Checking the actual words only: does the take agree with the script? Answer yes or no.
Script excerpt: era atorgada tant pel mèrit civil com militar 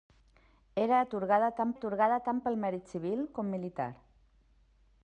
no